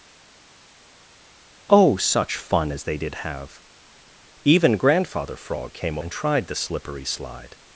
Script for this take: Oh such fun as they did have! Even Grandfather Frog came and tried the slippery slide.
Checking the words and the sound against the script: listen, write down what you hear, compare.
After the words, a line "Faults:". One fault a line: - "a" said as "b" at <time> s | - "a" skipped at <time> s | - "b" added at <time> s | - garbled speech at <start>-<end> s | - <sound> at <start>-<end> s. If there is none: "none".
Oh such fun as they did have! Even Grandfather Frog came and tried the slippery slide.
Faults:
none